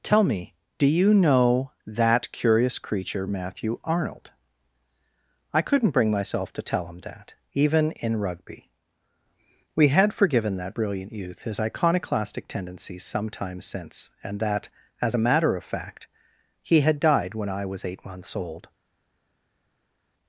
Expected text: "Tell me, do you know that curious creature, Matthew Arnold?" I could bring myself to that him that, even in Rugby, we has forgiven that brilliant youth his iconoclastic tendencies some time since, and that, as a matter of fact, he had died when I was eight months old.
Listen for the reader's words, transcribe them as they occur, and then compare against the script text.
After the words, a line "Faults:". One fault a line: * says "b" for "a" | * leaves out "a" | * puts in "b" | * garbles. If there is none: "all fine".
"Tell me, do you know that curious creature, Matthew Arnold?" I couldn't bring myself to tell him that, even in Rugby, we had forgiven that brilliant youth his iconoclastic tendencies some time since, and that, as a matter of fact, he had died when I was eight months old.
Faults:
* says "couldn't" for "could"
* says "tell" for "that"
* says "had" for "has"